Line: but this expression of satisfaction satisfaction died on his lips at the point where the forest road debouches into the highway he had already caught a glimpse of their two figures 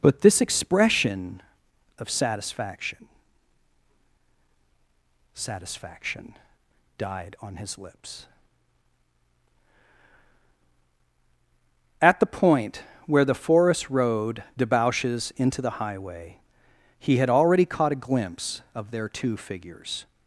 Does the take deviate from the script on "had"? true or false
false